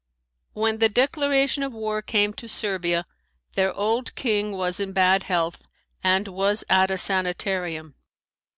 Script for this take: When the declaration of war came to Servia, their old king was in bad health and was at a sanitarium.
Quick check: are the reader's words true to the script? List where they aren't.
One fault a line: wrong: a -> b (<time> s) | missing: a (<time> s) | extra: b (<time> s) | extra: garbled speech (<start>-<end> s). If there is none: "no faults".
no faults